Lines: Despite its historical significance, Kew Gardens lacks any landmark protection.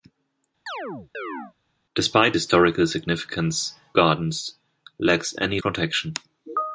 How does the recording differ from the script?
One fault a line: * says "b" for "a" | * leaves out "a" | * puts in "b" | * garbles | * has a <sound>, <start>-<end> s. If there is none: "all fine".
* has a chirp, 0.7-1.5 s
* leaves out "its"
* leaves out "Kew"
* leaves out "landmark"